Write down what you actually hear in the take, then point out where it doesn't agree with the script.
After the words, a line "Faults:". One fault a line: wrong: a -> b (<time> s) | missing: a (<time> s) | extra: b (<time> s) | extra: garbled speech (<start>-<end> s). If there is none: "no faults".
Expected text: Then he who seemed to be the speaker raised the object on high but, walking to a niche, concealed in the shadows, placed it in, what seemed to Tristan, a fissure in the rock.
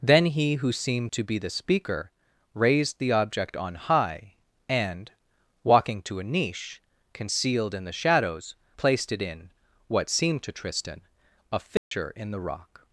Then he who seemed to be the speaker raised the object on high and, walking to a niche, concealed in the shadows, placed it in, what seemed to Tristan, a fissure in the rock.
Faults:
wrong: but -> and (4.7 s)